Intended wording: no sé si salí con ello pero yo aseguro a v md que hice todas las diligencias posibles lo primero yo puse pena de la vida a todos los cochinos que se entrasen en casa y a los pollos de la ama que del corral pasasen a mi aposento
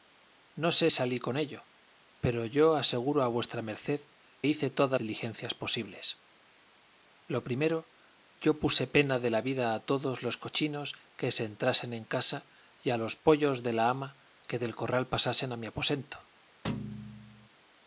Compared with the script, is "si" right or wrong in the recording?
wrong